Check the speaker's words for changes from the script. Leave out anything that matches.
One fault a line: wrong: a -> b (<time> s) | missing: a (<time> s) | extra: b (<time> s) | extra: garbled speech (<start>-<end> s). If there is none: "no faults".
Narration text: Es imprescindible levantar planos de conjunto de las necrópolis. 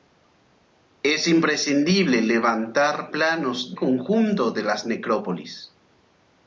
missing: de (3.8 s)